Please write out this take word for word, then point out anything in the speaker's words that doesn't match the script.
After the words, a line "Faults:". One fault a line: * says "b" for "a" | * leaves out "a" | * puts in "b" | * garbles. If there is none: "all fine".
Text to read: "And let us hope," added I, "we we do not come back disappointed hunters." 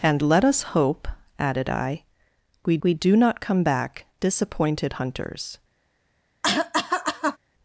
"And let us hope," added I, "we we do not come back disappointed hunters."
Faults:
all fine